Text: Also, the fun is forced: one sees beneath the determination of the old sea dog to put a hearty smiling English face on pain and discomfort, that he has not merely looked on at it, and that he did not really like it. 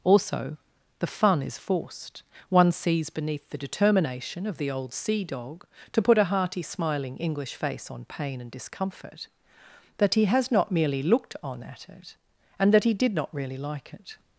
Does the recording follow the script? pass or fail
pass